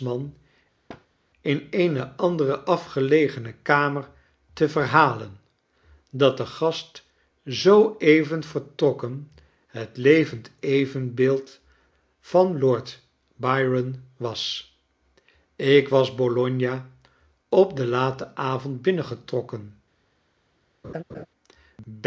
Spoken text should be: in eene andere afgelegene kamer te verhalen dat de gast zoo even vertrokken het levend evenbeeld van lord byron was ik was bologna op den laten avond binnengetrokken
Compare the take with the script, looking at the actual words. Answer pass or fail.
pass